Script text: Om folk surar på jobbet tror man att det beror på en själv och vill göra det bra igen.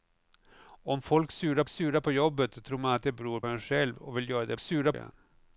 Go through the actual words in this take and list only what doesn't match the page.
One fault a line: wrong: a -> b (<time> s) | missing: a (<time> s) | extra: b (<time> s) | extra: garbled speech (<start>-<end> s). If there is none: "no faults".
extra: surar (1.7 s)
missing: på (3.4 s)
wrong: bra -> surar (4.6 s)